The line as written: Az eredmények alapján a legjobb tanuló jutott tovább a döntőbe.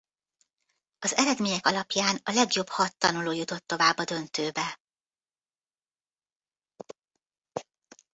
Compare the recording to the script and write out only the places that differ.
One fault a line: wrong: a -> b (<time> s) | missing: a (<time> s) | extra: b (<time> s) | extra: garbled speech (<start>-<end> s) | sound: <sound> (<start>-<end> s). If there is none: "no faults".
extra: hat (2.7 s)